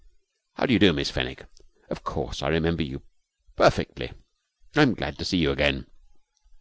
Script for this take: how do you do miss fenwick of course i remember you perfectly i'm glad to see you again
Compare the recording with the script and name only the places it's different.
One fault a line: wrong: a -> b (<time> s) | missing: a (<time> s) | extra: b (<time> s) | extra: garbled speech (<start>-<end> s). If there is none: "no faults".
no faults